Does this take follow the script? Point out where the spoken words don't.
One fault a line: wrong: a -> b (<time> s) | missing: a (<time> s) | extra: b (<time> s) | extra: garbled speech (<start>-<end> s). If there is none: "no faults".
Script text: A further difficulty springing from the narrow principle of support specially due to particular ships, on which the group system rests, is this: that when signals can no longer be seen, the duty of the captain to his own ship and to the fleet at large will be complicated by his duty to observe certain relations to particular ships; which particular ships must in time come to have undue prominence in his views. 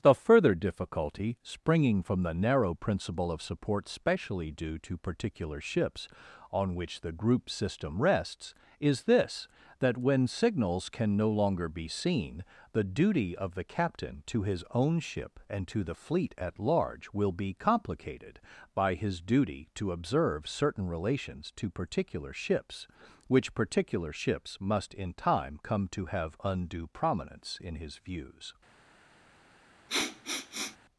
wrong: A -> The (0.0 s)